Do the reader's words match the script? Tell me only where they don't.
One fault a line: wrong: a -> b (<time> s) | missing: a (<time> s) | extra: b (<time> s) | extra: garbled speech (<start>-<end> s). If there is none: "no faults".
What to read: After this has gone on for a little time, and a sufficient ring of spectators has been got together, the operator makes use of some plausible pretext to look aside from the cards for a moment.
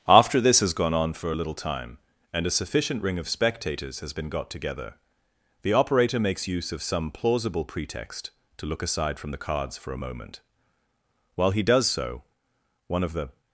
extra: While he does so one of the (11.4 s)